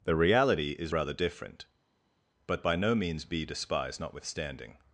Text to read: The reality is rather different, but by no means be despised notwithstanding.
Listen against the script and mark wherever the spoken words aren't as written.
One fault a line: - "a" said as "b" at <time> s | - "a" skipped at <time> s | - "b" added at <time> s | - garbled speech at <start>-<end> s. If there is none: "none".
none